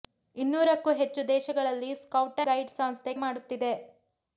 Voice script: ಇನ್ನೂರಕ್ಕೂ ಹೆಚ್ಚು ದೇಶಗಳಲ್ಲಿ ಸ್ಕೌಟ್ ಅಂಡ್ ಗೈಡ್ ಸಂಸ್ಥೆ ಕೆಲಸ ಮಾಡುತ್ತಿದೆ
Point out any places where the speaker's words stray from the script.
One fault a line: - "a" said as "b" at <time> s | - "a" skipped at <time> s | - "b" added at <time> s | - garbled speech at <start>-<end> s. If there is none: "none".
- "ಅಂಡ್" skipped at 2.4 s
- "ಕೆಲಸ" skipped at 3.1 s